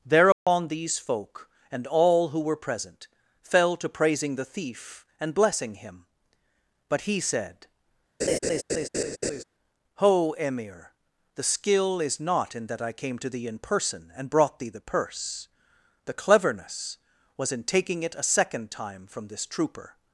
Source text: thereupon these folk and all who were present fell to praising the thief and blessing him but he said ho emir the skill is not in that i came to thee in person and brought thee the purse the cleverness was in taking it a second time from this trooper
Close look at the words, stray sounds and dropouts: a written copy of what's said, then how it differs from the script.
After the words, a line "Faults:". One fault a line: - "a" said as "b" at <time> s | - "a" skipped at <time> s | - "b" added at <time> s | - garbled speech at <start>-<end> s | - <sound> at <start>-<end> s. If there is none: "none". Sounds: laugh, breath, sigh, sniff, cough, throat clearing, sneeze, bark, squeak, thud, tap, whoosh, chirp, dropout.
thereupon these folk and all who were present fell to praising the thief and blessing him but he said ho emir the skill is not in that i came to thee in person and brought thee the purse the cleverness was in taking it a second time from this trooper
Faults:
- dropout at 0.3-0.5 s
- laugh at 8.2-9.4 s